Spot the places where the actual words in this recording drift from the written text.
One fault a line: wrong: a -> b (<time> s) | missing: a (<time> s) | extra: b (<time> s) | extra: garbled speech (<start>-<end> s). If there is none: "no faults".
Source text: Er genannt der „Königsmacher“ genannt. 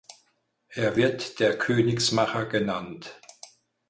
wrong: genannt -> wird (0.9 s)